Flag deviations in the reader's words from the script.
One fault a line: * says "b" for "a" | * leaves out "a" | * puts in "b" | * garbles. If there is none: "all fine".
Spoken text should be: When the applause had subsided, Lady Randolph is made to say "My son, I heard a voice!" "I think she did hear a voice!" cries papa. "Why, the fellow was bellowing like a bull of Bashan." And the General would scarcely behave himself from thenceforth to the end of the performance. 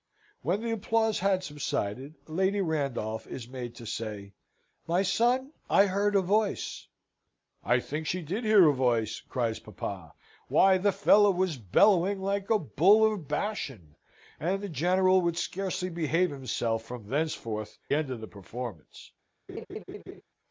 * leaves out "to the"